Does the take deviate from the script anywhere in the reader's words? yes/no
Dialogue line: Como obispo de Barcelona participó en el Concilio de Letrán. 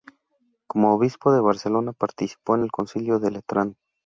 no